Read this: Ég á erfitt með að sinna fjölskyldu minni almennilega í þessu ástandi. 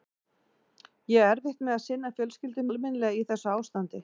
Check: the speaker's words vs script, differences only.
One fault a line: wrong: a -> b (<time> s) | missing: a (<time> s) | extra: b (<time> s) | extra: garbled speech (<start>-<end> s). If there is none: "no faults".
missing: minni (2.6 s)